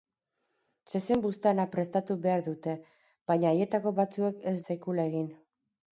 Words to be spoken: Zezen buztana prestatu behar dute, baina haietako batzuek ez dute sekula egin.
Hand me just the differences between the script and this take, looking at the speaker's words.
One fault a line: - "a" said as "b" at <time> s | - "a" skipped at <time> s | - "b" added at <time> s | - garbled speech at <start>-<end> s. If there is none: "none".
- "dute" skipped at 4.6 s